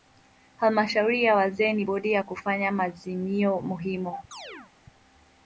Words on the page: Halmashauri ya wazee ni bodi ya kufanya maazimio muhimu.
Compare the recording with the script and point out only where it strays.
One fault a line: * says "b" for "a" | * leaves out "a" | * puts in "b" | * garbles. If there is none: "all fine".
all fine